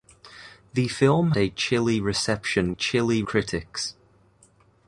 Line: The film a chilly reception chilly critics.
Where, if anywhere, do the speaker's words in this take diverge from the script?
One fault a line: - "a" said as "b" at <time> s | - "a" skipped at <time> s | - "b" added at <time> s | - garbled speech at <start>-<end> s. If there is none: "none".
none